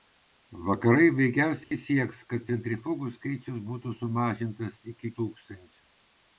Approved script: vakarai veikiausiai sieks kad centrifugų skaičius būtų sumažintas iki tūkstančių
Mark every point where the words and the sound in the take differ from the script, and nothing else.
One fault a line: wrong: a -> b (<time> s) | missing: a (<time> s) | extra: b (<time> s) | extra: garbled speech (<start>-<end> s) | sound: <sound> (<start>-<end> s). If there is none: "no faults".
sound: dropout (1.6-1.7 s)